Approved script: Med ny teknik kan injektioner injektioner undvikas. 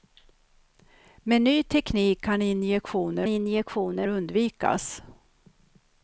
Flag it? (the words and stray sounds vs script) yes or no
no